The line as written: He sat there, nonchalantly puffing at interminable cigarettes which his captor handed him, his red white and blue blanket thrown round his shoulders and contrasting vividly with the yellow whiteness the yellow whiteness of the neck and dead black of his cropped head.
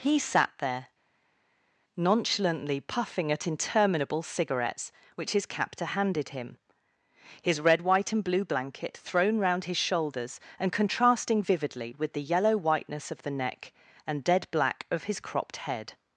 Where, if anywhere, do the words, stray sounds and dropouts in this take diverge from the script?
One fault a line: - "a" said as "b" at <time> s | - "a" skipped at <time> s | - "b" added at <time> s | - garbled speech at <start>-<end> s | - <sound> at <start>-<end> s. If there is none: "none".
- "the yellow whiteness" skipped at 13.1 s